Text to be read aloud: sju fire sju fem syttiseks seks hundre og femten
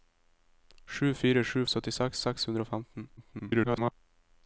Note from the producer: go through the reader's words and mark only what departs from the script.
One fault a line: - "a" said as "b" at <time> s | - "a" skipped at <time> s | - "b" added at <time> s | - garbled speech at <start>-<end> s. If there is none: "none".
- "fem" skipped at 1.6 s
- garbled speech at 3.2-3.9 s